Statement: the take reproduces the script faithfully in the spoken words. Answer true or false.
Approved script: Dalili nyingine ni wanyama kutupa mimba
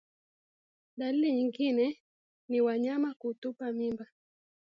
true